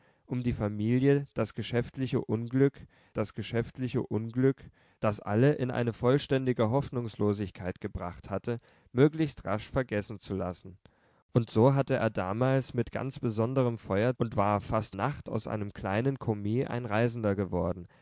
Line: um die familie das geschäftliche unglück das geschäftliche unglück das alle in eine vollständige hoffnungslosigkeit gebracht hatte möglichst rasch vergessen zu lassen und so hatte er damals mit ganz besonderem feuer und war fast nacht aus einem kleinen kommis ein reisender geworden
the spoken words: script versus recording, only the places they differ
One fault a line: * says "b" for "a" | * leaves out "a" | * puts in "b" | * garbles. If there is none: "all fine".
all fine